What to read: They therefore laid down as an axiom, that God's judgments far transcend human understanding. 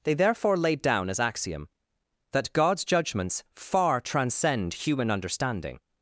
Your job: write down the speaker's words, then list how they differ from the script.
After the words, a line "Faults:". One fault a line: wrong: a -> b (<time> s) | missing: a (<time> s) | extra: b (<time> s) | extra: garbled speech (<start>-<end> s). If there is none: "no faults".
They therefore laid down as axiom, that God's judgments far transcend human understanding.
Faults:
missing: an (1.2 s)